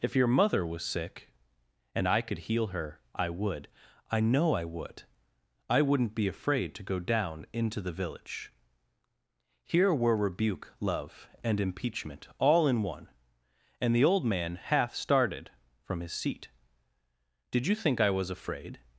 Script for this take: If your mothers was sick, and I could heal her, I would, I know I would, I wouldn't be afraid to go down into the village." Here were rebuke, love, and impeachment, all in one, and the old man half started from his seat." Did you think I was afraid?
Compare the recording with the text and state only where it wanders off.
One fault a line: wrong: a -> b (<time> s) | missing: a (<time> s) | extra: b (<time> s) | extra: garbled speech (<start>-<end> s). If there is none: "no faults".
wrong: mothers -> mother (0.2 s)